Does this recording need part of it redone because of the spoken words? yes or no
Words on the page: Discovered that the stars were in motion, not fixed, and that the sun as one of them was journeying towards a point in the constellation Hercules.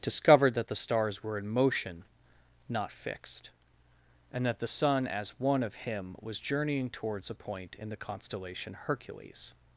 yes